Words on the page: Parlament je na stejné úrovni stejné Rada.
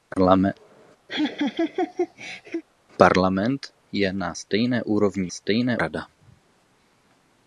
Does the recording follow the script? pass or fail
pass